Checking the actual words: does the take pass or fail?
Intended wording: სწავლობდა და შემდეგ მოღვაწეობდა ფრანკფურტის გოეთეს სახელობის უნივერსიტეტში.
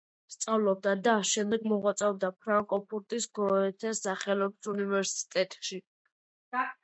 pass